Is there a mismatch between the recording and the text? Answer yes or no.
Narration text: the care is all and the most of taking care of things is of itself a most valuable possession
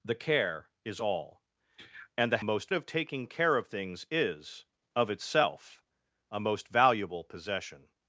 no